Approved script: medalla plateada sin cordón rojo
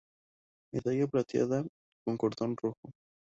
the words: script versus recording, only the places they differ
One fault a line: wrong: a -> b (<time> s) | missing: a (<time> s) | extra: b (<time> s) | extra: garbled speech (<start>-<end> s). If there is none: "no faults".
wrong: sin -> con (2.0 s)